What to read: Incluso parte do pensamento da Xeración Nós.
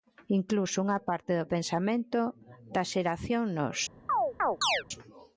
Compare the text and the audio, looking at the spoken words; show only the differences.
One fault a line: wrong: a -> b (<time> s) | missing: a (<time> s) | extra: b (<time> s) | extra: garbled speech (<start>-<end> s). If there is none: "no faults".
extra: unha (0.8 s)